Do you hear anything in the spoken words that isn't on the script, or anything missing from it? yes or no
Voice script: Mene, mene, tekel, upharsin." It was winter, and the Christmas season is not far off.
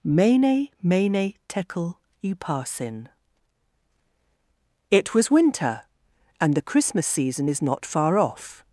no